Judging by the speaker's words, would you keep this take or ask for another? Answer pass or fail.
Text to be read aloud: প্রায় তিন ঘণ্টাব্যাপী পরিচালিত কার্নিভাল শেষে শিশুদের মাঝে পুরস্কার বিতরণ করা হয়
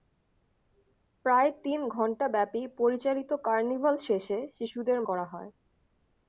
fail